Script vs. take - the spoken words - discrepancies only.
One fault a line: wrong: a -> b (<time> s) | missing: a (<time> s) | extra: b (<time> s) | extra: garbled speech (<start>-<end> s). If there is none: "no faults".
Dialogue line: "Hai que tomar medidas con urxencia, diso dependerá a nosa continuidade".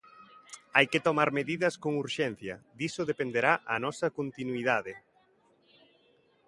no faults